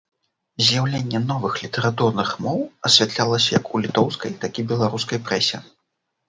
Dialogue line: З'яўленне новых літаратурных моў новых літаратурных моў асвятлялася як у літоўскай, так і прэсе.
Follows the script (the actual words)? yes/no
no